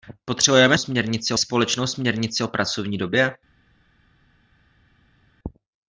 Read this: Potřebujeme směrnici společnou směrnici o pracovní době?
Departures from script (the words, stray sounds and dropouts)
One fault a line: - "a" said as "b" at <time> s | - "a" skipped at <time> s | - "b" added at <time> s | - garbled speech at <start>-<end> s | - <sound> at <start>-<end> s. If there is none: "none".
none